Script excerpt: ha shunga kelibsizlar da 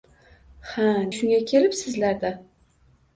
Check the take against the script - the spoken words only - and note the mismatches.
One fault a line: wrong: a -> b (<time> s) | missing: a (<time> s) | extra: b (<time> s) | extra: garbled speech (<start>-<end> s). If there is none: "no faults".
no faults